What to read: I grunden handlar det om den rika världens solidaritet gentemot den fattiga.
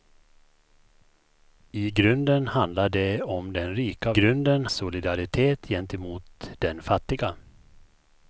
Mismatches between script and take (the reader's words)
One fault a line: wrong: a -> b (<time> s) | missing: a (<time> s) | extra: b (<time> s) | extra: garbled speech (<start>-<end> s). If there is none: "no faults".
wrong: världens -> grunden (4.1 s)